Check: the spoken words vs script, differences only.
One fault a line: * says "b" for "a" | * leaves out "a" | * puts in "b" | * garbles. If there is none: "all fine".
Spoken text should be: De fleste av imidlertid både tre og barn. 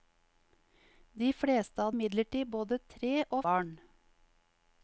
all fine